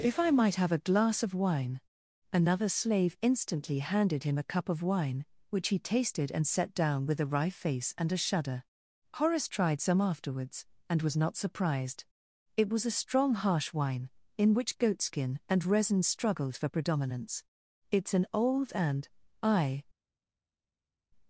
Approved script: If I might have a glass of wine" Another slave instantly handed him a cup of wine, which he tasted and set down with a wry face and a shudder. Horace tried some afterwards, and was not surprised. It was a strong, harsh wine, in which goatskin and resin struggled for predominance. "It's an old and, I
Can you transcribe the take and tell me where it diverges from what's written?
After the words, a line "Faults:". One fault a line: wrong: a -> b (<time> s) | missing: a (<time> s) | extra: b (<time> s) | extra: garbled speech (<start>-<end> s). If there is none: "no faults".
If I might have a glass of wine" Another slave instantly handed him a cup of wine, which he tasted and set down with a wry face and a shudder. Horace tried some afterwards, and was not surprised. It was a strong, harsh wine, in which goatskin and resin struggled for predominance. "It's an old and, I
Faults:
no faults